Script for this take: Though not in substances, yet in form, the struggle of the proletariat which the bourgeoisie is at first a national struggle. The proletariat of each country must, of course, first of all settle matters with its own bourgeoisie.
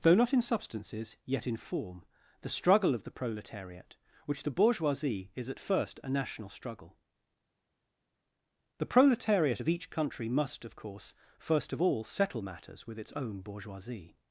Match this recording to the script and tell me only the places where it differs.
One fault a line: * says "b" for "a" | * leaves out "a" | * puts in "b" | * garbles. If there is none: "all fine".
all fine